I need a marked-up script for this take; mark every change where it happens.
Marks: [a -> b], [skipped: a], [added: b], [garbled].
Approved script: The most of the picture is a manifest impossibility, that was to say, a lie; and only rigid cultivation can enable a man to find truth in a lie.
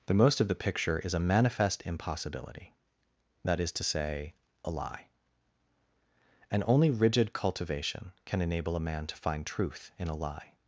The most of the picture is a manifest impossibility, that [was -> is] to say, a lie; and only rigid cultivation can enable a man to find truth in a lie.